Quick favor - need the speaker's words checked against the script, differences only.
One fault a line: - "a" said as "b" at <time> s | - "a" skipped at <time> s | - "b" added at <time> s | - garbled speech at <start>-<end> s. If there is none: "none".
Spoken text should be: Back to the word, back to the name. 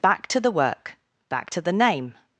- "word" said as "work" at 0.5 s